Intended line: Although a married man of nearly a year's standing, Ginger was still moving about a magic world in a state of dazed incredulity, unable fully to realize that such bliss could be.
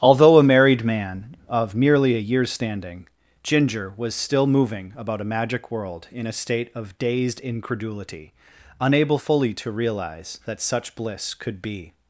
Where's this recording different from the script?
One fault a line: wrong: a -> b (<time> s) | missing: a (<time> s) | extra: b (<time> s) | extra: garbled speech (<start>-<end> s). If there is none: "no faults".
wrong: nearly -> merely (1.8 s)